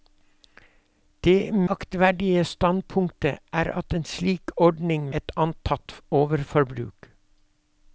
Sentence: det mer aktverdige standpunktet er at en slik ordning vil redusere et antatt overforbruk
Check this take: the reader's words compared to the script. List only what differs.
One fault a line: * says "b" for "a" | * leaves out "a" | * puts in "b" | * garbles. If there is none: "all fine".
* leaves out "mer"
* leaves out "vil redusere"